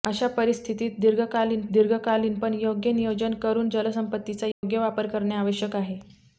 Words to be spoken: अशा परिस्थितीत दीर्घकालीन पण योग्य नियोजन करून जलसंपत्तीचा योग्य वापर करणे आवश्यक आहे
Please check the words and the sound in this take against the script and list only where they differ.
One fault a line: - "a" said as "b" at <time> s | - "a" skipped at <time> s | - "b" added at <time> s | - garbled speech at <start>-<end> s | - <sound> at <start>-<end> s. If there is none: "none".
- "दीर्घकालीन" added at 1.7 s
- dropout at 4.5-4.6 s